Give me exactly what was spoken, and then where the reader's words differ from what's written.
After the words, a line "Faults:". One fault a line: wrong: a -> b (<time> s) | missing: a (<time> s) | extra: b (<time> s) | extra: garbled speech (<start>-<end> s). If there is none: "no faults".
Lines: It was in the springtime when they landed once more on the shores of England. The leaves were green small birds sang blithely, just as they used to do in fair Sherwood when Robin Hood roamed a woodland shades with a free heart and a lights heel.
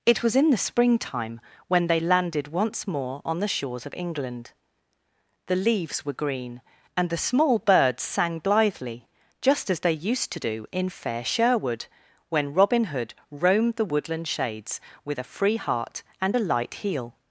It was in the springtime when they landed once more on the shores of England. The leaves were green and the small birds sang blithely, just as they used to do in fair Sherwood when Robin Hood roamed the woodland shades with a free heart and a light heel.
Faults:
extra: and the (7.0 s)
wrong: a -> the (13.8 s)
wrong: lights -> light (16.4 s)